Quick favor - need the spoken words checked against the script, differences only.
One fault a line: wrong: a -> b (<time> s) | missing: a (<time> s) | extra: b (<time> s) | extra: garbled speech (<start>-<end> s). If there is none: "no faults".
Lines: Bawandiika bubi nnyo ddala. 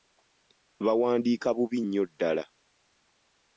no faults